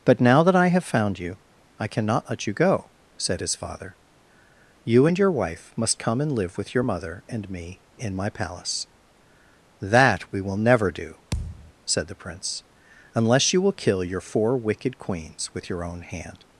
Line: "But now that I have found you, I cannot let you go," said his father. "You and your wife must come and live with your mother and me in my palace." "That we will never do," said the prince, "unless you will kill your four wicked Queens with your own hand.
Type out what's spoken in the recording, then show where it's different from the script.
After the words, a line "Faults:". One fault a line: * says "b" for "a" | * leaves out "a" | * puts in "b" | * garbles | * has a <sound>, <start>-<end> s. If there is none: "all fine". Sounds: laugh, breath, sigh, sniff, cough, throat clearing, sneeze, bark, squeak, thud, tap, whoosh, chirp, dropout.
"But now that I have found you, I cannot let you go," said his father. "You and your wife must come and live with your mother and me in my palace." "That we will never do," said the prince, "unless you will kill your four wicked Queens with your own hand.
Faults:
* has a thud, 11.3-11.7 s